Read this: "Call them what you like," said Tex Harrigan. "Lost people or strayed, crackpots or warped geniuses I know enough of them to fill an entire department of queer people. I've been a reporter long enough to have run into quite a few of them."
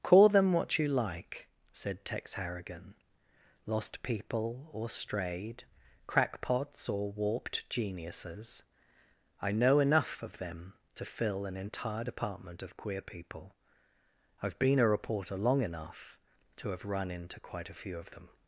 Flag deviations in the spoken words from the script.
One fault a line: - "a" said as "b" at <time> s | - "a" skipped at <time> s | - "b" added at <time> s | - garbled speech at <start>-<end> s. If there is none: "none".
none